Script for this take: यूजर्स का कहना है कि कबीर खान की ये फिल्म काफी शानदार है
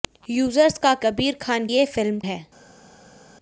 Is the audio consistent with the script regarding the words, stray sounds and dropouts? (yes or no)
no